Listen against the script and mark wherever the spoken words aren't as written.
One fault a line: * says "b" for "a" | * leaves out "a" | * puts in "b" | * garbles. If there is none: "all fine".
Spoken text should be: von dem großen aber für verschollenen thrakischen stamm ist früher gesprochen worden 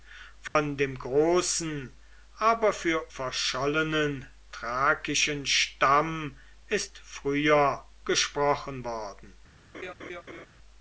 all fine